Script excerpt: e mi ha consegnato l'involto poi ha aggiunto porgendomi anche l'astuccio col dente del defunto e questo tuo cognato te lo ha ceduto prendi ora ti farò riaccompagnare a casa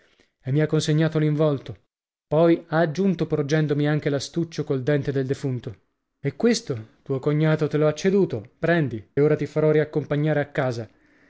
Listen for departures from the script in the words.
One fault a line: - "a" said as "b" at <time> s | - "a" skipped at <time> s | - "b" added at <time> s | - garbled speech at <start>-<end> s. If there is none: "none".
none